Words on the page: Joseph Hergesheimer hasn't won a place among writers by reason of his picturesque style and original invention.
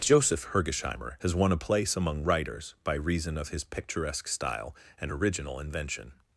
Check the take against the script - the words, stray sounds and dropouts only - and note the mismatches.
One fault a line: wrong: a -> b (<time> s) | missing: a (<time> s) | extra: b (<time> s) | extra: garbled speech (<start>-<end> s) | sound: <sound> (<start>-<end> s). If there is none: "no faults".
wrong: hasn't -> has (1.2 s)